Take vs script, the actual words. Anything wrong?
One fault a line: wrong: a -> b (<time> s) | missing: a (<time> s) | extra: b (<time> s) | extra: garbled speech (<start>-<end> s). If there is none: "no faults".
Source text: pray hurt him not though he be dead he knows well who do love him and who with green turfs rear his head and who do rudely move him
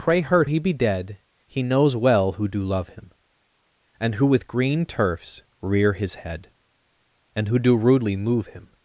missing: him not though (0.5 s)